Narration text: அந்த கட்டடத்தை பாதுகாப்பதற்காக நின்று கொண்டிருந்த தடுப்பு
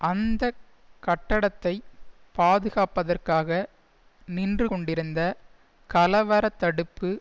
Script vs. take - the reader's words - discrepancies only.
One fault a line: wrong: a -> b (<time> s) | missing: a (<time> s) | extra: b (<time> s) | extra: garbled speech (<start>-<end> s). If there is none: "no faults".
extra: கலவர (5.9 s)